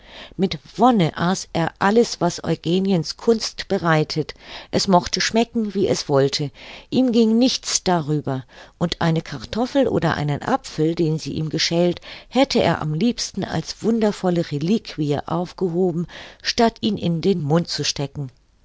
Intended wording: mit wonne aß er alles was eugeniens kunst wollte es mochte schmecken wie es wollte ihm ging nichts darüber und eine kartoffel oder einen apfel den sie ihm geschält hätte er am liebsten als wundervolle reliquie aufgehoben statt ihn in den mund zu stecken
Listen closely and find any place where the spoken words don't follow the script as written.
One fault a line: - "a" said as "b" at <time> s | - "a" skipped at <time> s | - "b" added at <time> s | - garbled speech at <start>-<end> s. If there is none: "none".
- "wollte" said as "bereitet" at 3.7 s